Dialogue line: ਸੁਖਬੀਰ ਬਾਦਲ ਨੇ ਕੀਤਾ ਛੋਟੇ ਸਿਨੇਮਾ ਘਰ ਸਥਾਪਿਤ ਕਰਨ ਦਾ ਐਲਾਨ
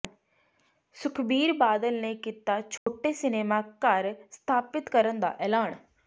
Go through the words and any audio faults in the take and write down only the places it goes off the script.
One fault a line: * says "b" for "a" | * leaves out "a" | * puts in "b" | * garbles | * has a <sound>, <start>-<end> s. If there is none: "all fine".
* has a dropout, 2.8-2.9 s